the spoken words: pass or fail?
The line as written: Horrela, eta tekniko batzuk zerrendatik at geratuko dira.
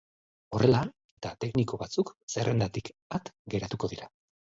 pass